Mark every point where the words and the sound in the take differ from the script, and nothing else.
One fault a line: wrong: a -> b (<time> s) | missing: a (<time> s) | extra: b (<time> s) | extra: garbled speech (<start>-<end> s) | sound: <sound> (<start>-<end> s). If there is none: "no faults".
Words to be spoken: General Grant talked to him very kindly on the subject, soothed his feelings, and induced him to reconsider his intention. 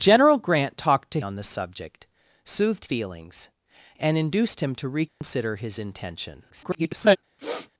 missing: him very kindly (1.2 s)
missing: his (2.9 s)
sound: dropout (5.1-5.2 s)
extra: garbled speech (6.5-7.2 s)
sound: sniff (7.4-7.7 s)